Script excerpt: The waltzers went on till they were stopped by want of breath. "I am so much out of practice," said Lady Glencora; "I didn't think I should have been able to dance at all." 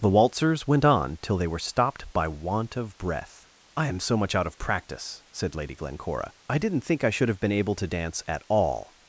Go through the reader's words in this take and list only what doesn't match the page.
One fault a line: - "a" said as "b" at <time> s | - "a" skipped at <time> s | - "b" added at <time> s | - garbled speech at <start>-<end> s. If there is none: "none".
none